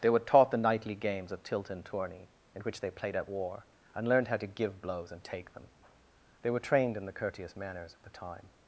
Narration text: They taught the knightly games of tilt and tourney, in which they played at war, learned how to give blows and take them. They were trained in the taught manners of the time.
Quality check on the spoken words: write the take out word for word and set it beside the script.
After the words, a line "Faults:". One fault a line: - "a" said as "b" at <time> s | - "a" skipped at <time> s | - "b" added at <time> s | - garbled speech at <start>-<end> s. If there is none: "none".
They were taught the knightly games of tilt and tourney, in which they played at war, and learned how to give blows and take them. They were trained in the courteous manners of the time.
Faults:
- "were" added at 0.1 s
- "and" added at 3.9 s
- "taught" said as "courteous" at 7.1 s